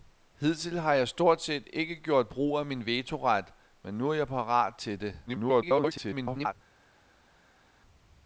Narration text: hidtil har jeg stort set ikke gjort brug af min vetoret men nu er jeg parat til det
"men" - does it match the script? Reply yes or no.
yes